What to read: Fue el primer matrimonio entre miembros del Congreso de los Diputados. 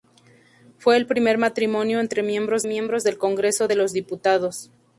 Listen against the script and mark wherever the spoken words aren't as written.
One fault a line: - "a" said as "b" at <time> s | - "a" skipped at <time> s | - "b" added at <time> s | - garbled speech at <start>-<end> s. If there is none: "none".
- "miembros" added at 2.7 s